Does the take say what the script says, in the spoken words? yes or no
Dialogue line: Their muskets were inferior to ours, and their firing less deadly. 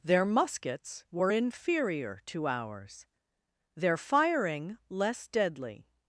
no